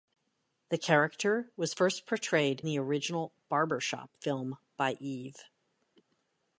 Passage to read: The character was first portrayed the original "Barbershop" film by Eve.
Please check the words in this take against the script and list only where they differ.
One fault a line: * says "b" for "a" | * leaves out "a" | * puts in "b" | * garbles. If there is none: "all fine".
all fine